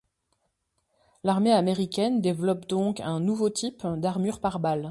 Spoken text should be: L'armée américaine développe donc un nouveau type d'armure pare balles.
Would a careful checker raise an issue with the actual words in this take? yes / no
no